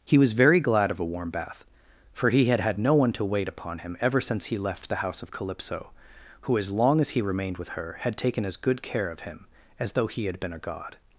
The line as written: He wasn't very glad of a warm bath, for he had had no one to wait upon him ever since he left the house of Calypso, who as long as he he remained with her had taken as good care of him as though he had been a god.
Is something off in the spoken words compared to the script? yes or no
yes